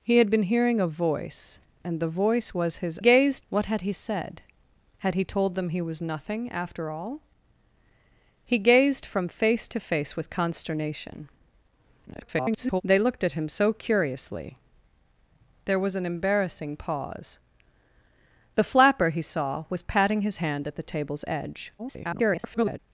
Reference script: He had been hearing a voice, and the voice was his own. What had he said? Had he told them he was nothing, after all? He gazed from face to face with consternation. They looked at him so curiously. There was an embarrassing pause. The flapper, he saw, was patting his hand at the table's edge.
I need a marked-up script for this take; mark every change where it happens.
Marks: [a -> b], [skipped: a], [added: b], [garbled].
He had been hearing a voice, and the voice was his [own. -> gazed] What had he said? Had he told them he was nothing, after all? He gazed from face to face with consternation. [garbled] They looked at him so curiously. There was an embarrassing pause. The flapper, he saw, was patting his hand at the table's edge. [garbled]